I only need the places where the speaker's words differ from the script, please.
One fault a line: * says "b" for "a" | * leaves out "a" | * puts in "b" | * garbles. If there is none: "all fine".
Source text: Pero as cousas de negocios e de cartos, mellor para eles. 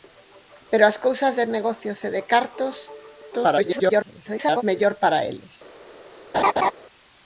* garbles